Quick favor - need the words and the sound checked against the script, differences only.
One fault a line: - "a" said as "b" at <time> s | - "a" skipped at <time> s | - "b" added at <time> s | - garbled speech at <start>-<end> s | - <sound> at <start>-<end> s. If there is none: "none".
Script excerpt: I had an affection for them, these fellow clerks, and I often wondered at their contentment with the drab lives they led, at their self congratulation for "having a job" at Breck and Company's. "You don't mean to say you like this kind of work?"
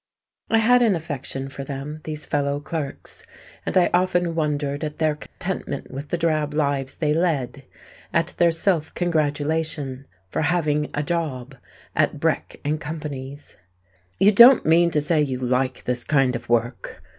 - dropout at 5.3-5.4 s